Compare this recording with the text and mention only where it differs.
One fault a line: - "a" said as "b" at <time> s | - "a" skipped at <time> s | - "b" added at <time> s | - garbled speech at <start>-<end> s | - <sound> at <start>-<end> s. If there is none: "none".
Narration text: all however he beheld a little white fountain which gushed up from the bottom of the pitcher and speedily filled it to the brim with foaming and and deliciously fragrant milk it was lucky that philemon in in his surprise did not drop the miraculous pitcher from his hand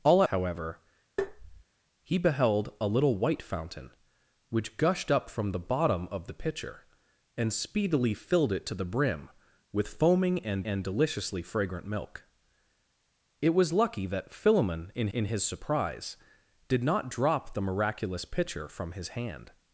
- tap at 1.2-1.6 s